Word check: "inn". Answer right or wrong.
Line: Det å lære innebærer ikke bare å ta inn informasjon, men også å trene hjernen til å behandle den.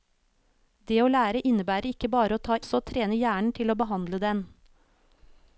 wrong